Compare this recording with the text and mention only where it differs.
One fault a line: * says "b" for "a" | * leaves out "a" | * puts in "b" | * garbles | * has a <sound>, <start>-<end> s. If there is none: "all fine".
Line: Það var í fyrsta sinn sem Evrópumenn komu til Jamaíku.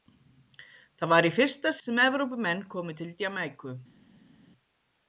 * leaves out "sinn"